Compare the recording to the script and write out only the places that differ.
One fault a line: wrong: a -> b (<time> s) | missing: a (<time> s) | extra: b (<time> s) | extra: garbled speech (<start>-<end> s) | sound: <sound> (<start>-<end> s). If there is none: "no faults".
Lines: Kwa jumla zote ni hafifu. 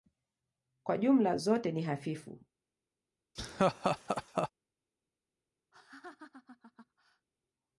sound: laugh (3.4-4.5 s)
sound: laugh (5.7-7.3 s)